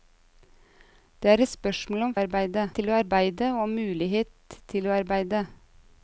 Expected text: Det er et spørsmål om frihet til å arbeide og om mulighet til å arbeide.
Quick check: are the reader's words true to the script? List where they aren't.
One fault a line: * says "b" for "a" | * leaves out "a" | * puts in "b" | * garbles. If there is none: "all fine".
* says "arbeide" for "frihet"